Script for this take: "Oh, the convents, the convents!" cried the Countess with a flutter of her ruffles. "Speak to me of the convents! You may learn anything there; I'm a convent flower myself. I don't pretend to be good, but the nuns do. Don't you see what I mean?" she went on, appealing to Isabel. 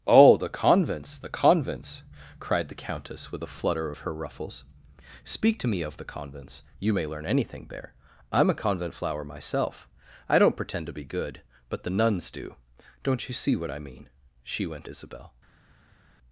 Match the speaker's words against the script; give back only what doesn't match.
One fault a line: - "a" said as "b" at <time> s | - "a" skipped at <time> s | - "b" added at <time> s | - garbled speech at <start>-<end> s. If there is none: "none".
- "on appealing to" skipped at 14.9 s